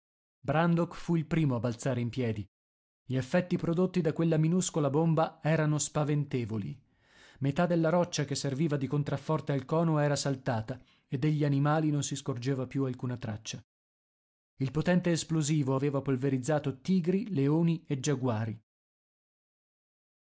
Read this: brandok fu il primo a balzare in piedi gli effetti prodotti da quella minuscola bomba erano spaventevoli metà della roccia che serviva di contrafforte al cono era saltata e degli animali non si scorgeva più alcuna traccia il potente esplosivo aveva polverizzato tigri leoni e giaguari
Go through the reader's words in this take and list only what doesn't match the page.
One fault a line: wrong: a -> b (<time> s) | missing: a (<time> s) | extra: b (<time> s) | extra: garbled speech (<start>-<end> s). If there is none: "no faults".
no faults